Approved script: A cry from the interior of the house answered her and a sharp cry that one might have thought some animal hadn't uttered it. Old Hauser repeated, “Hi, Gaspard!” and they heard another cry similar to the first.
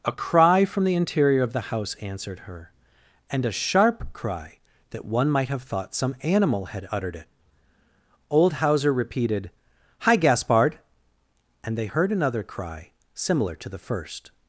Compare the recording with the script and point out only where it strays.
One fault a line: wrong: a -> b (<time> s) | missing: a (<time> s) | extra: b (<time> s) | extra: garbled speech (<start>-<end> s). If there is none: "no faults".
wrong: hadn't -> had (6.7 s)